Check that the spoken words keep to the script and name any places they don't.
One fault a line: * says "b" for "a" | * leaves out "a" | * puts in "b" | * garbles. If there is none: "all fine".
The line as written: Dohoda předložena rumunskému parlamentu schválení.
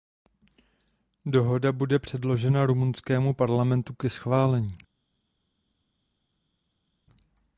* puts in "bude"
* puts in "ke"